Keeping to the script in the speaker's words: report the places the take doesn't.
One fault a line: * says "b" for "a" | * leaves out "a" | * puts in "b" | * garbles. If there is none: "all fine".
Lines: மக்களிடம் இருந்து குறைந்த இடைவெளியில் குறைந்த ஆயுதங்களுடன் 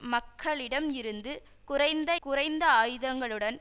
* leaves out "இடைவெளியில்"